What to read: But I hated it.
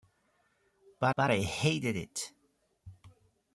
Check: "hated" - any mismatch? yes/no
no